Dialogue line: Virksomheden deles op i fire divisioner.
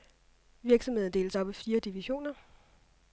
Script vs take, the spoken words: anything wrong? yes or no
no